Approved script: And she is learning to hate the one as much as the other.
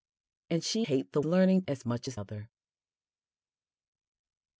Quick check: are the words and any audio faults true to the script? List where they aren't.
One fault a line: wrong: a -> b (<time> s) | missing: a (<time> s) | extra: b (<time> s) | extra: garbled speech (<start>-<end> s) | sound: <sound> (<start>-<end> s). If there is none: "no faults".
missing: is learning to (0.9 s)
wrong: one -> learning (1.2 s)
missing: the (2.2 s)